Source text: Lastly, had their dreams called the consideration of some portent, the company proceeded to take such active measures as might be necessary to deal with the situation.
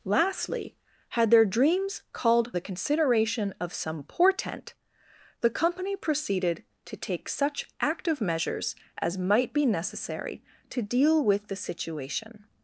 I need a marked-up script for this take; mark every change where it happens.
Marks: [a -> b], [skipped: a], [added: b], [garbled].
Lastly, had their dreams called the consideration of some portent, the company proceeded to take such active measures as might be necessary to deal with the situation.